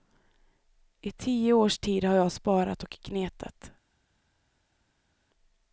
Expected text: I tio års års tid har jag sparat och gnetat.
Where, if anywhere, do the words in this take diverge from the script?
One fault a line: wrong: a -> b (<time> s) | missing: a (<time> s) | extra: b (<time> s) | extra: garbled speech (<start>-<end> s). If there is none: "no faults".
missing: års (1.8 s)